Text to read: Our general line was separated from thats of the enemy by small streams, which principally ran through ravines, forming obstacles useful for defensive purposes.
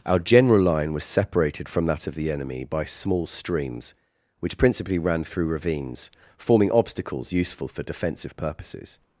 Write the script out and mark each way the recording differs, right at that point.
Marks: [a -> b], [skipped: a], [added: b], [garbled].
Our general line was separated from [thats -> that] of the enemy by small streams, which principally ran through ravines, forming obstacles useful for defensive purposes.